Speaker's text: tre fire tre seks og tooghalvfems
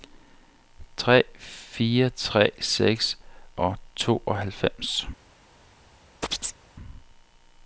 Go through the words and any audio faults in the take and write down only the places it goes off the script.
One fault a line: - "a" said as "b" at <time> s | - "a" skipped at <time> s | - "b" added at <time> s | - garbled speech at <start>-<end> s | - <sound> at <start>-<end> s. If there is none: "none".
- chirp at 6.2-6.6 s